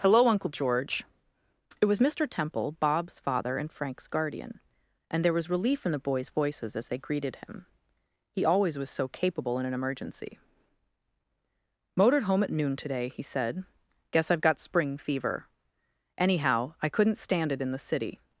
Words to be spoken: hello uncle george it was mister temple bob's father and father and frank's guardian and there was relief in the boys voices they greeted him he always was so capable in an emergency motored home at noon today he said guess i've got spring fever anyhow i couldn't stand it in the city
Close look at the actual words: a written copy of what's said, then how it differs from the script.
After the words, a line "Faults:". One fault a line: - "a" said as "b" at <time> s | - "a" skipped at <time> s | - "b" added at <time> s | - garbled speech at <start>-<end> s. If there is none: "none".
hello uncle george it was mister temple bob's father and frank's guardian and there was relief in the boys voices as they greeted him he always was so capable in an emergency motored home at noon today he said guess i've got spring fever anyhow i couldn't stand it in the city
Faults:
- "father and" skipped at 3.7 s
- "as" added at 6.8 s